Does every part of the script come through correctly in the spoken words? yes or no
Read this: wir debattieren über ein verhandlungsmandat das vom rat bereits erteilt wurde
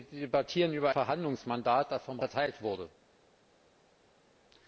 no